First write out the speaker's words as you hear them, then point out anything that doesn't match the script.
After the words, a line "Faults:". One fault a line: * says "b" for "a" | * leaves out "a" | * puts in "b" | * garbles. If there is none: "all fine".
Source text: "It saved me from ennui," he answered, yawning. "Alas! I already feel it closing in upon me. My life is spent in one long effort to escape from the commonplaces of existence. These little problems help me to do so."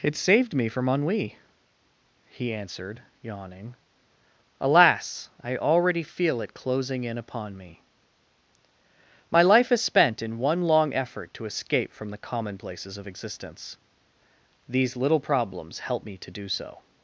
"It saved me from ennui," he answered, yawning. "Alas! I already feel it closing in upon me. My life is spent in one long effort to escape from the commonplaces of existence. These little problems help me to do so."
Faults:
all fine